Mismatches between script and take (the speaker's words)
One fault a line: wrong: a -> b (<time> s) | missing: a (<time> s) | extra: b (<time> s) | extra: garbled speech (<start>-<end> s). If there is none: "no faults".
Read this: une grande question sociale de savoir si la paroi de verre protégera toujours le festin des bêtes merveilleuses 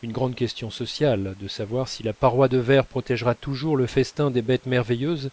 no faults